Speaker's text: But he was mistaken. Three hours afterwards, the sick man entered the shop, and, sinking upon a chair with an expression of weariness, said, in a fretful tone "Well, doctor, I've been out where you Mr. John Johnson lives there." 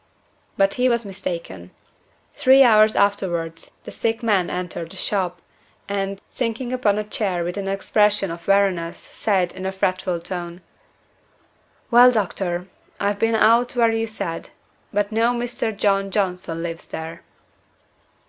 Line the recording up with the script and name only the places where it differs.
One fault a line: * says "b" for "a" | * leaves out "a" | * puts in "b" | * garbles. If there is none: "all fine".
* puts in "said but no"